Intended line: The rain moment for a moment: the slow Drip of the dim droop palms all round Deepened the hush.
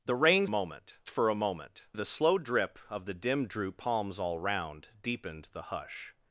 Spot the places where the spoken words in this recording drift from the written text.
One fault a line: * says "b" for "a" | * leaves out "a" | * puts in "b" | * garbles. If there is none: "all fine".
all fine